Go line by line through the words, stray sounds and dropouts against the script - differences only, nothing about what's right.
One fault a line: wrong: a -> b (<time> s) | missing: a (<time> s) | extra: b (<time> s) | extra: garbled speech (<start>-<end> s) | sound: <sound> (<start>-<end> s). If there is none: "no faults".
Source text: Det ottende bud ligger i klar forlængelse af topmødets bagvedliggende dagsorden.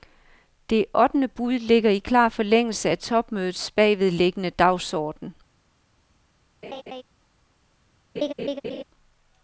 sound: laugh (6.6-7.0 s)
sound: laugh (8.2-8.8 s)